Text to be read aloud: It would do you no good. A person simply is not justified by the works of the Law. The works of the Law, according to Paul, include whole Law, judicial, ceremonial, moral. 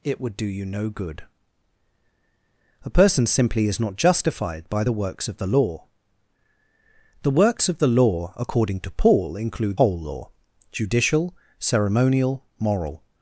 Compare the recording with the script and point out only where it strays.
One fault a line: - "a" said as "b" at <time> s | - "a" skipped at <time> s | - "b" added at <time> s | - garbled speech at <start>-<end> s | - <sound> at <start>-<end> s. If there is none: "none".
none